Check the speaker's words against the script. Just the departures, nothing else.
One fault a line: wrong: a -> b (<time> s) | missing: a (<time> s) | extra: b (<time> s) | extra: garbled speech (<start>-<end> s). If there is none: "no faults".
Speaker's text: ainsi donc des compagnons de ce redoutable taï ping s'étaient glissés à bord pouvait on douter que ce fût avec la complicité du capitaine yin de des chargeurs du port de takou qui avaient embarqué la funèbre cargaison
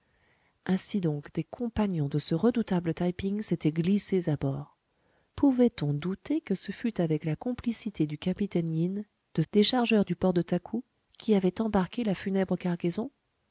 no faults